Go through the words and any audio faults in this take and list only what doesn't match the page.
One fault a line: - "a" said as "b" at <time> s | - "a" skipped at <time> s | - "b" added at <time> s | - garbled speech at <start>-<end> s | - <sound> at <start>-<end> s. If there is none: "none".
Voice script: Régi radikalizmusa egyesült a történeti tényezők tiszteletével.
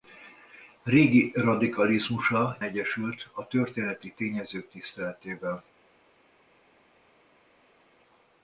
none